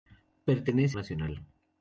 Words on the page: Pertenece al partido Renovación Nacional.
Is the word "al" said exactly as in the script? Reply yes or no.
no